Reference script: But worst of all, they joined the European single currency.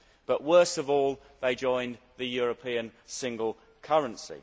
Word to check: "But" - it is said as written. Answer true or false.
true